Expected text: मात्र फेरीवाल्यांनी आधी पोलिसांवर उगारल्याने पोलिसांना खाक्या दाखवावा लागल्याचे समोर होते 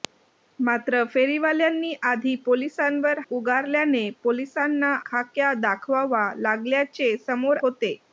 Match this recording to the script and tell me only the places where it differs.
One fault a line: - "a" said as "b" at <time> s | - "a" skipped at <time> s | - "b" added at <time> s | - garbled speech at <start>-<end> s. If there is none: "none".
none